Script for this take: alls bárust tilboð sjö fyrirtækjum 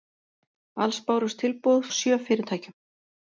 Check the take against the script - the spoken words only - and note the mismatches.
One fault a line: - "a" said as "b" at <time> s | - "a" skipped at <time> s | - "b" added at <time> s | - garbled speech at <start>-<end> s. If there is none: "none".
none